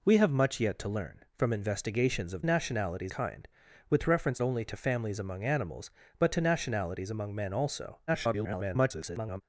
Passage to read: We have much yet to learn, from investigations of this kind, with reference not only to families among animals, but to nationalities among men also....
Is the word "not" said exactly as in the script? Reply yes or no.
no